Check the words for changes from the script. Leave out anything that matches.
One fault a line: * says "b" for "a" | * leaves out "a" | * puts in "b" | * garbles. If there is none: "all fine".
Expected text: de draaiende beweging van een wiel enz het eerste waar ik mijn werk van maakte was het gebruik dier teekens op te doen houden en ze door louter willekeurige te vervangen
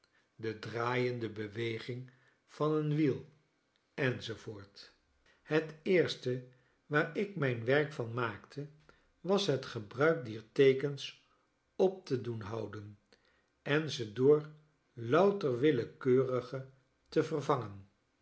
all fine